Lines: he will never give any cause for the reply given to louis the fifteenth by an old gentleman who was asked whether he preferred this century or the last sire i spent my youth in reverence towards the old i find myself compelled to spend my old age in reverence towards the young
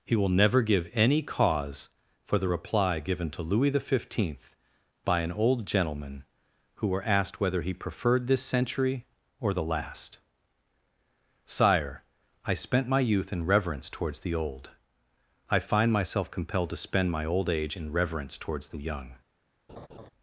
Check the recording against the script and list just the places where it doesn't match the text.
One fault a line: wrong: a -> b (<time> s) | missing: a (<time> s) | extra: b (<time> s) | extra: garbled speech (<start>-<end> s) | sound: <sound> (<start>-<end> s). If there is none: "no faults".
wrong: was -> were (6.9 s)
sound: laugh (19.7-20.1 s)